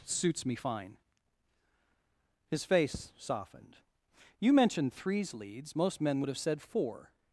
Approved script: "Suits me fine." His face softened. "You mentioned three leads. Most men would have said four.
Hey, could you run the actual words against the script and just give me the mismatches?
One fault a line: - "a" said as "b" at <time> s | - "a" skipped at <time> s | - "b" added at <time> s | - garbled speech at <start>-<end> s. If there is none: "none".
- "three" said as "threes" at 4.9 s